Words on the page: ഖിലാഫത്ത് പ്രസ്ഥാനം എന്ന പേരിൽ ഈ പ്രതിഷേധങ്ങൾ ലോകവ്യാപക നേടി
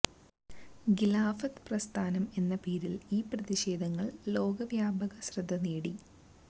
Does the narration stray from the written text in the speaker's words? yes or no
yes